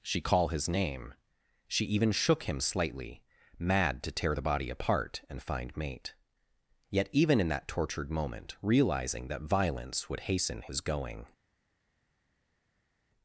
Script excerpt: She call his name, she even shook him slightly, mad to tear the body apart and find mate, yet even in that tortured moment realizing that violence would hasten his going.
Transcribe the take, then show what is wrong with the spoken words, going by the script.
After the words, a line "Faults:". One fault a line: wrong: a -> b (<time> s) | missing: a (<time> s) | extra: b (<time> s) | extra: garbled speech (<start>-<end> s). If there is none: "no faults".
She call his name, she even shook him slightly, mad to tear the body apart and find mate, yet even in that tortured moment realizing that violence would hasten his going.
Faults:
no faults